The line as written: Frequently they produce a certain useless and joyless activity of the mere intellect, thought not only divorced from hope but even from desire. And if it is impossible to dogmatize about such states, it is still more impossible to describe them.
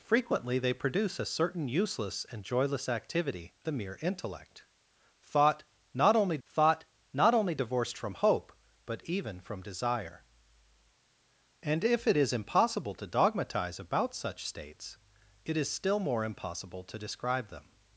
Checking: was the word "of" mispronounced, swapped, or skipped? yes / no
yes